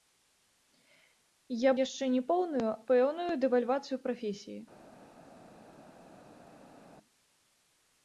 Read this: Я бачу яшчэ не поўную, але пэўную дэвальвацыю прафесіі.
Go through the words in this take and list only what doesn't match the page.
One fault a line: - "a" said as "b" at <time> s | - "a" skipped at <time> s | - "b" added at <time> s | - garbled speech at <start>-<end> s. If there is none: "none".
- "бачу" skipped at 1.7 s
- "але" skipped at 2.7 s